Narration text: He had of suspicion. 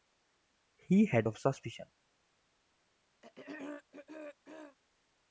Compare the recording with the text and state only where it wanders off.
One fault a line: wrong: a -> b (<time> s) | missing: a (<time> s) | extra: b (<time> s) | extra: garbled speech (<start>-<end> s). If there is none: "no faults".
no faults